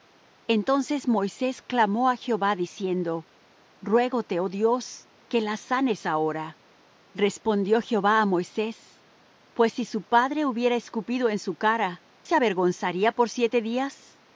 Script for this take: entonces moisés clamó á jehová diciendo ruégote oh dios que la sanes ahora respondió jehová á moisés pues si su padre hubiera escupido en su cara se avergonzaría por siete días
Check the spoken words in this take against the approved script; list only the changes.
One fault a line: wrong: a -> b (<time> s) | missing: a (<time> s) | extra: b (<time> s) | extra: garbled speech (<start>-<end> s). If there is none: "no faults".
no faults